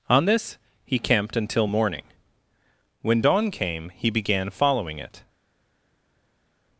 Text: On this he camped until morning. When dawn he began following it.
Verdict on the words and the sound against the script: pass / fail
fail